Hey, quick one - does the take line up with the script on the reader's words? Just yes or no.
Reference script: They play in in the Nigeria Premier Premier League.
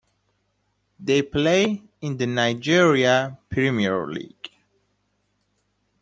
no